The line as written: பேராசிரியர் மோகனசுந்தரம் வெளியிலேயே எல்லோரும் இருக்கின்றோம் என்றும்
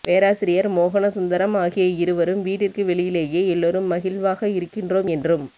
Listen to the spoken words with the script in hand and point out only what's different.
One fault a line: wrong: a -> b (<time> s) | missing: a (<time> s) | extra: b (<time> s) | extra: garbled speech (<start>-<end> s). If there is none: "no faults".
extra: ஆகிய இருவரும் வீட்டிற்கு (1.6 s)
extra: மகிழ்வாக (3.9 s)